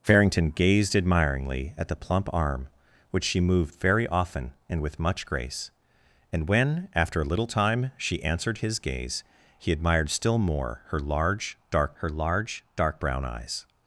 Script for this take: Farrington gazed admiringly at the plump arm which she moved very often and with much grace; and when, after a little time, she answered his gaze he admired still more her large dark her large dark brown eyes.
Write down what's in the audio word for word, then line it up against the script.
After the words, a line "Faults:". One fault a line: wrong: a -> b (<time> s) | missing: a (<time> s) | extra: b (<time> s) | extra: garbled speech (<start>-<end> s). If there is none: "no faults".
Farrington gazed admiringly at the plump arm which she moved very often and with much grace; and when, after a little time, she answered his gaze he admired still more her large dark her large dark brown eyes.
Faults:
no faults